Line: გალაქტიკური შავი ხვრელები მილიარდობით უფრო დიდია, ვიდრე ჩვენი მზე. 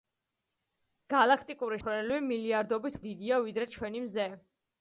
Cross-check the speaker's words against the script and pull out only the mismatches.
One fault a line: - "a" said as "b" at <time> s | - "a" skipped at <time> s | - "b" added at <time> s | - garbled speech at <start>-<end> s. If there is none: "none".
- "შავი" skipped at 1.8 s
- "უფრო" skipped at 3.0 s